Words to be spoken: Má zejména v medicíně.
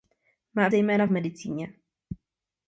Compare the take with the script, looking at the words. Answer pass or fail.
pass